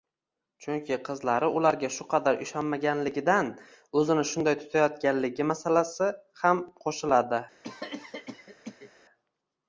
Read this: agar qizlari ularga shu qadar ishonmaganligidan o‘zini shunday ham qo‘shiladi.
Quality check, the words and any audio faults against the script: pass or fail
fail